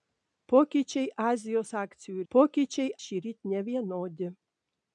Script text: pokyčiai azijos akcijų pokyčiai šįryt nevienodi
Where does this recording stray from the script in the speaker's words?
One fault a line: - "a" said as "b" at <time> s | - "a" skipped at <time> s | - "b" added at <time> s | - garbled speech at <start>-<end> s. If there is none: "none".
none